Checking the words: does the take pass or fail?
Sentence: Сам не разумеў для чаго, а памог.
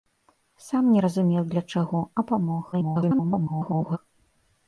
fail